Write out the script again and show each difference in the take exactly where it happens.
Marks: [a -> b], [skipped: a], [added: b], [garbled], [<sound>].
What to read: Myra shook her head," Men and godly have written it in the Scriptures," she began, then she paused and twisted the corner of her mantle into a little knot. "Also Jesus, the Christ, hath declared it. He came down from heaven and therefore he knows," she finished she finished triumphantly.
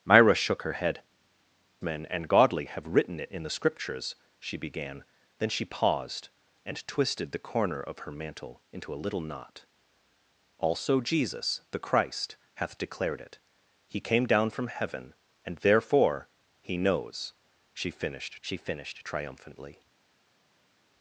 Myra shook her head," Men and godly have written it in the Scriptures," she began, then she paused and twisted the corner of her mantle into a little knot. "Also Jesus, the Christ, hath declared it. He came down from heaven and therefore he knows," she finished she finished triumphantly.